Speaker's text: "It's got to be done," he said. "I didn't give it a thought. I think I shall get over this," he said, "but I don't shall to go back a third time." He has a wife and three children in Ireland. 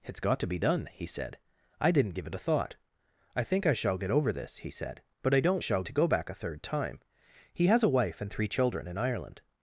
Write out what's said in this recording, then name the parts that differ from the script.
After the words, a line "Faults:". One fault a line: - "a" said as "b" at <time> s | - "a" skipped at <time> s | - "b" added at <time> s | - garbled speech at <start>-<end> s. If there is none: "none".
"It's got to be done," he said. "I didn't give it a thought. I think I shall get over this," he said, "but I don't shall to go back a third time." He has a wife and three children in Ireland.
Faults:
none